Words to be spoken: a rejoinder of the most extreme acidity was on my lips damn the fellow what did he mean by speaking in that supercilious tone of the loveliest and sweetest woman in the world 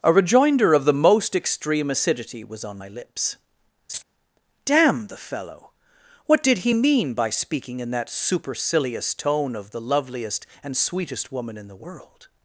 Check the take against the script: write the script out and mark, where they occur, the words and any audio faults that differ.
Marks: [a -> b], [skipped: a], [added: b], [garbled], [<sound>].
a rejoinder of the most extreme acidity was on my lips [laugh] damn the fellow what did he mean by speaking in that supercilious tone of the loveliest and sweetest woman in the world